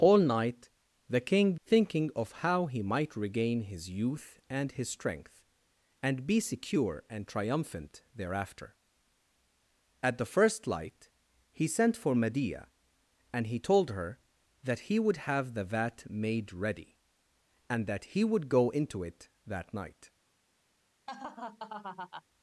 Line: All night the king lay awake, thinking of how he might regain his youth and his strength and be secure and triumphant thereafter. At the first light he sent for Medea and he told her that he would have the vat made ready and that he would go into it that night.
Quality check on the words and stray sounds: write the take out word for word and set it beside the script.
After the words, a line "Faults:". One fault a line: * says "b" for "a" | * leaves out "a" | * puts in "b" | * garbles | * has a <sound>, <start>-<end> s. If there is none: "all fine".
All night the king thinking of how he might regain his youth and his strength and be secure and triumphant thereafter. At the first light he sent for Medea and he told her that he would have the vat made ready and that he would go into it that night.
Faults:
* leaves out "lay awake"
* has a laugh, 21.1-22.2 s